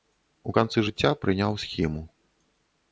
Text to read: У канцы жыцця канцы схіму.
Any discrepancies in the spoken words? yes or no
yes